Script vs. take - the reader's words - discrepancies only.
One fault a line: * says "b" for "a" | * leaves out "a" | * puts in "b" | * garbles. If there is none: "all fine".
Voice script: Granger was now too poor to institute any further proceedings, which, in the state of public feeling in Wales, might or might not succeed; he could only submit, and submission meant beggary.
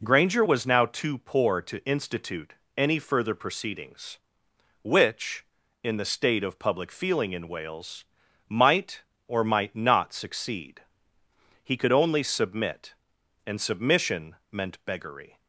all fine